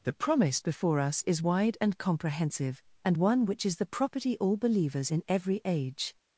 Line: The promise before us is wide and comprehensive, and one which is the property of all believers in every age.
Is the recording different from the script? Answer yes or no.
yes